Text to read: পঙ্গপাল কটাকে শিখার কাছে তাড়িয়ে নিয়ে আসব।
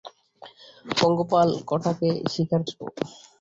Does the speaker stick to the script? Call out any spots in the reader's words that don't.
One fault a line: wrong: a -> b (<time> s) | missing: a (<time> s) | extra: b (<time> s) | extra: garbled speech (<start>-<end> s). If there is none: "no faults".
missing: কাছে তাড়িয়ে নিয়ে (2.6 s)